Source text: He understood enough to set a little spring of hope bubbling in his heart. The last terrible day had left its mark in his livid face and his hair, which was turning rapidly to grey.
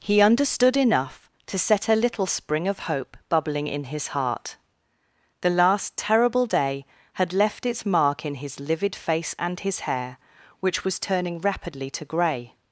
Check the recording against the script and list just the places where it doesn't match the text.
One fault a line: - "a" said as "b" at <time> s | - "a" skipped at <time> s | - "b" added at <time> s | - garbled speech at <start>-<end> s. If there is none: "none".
none